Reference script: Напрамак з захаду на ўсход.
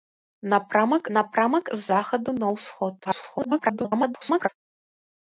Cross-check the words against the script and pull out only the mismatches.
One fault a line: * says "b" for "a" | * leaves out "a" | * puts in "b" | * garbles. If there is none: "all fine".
* puts in "напрамак"
* garbles